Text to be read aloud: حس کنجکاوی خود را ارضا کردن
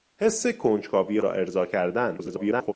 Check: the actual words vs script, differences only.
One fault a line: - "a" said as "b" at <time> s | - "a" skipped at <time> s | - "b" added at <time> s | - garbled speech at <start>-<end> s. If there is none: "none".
- "خود" skipped at 1.2 s
- garbled speech at 2.2-2.7 s